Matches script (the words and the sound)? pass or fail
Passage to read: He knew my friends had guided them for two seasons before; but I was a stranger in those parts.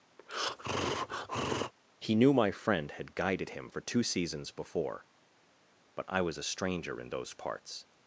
fail